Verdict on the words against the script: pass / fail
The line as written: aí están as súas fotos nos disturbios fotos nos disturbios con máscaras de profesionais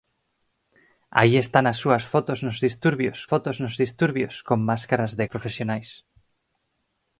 pass